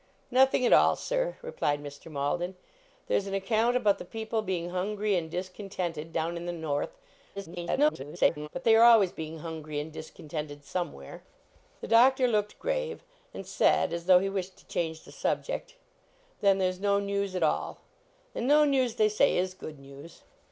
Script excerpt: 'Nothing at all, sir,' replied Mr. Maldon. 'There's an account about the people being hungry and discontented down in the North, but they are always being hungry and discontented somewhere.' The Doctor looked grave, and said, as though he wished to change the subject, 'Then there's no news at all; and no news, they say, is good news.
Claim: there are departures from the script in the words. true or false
true